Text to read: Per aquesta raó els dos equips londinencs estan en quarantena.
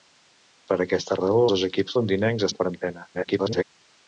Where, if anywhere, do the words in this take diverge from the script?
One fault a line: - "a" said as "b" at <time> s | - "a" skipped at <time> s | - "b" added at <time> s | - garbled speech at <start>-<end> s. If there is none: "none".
- "els" skipped at 1.4 s
- "estan" skipped at 2.5 s
- garbled speech at 3.1-3.6 s